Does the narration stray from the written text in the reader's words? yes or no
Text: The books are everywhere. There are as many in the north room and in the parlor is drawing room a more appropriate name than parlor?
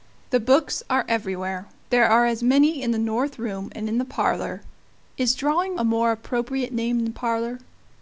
yes